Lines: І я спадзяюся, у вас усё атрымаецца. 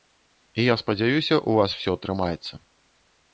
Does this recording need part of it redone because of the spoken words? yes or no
no